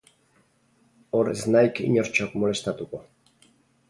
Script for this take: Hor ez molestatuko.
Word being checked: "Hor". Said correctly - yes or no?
yes